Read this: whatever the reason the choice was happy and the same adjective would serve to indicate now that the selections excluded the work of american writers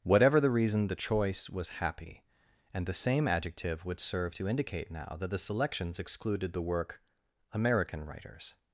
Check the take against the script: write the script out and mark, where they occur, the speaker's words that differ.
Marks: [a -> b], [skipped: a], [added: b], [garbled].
whatever the reason the choice was happy and the same adjective would serve to indicate now that the selections excluded the work [skipped: of] american writers